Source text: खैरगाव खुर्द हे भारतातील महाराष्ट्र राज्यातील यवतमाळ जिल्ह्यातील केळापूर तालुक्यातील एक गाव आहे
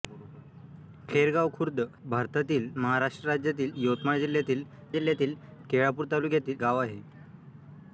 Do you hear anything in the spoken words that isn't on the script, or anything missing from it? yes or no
yes